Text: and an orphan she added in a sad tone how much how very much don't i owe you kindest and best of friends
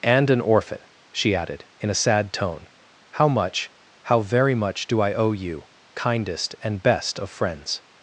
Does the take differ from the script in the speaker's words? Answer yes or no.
yes